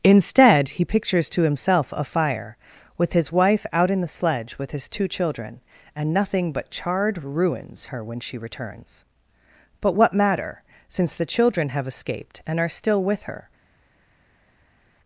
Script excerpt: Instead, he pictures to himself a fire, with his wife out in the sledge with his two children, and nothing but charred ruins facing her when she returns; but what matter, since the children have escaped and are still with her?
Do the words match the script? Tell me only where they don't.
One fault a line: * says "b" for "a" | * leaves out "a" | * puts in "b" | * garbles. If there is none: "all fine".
* leaves out "facing"